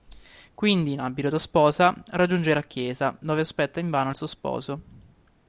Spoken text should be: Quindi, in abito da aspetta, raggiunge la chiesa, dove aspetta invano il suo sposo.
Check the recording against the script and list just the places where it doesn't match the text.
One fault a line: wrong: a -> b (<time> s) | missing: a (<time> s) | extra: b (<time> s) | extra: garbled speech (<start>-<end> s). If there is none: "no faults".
wrong: aspetta -> sposa (1.4 s)